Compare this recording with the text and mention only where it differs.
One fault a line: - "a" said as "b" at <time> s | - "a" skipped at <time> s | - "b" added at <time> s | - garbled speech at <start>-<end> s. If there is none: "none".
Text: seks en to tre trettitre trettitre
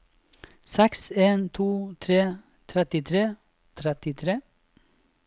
none